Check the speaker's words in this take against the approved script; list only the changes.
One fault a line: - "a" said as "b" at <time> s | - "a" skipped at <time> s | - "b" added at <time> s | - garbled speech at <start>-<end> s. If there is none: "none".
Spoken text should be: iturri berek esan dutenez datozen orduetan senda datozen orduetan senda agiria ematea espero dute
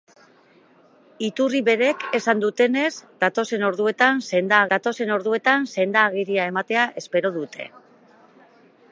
none